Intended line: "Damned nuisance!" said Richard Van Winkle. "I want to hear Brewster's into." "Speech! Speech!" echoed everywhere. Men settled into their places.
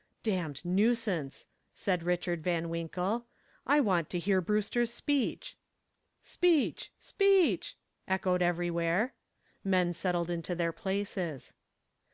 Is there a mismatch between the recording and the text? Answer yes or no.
yes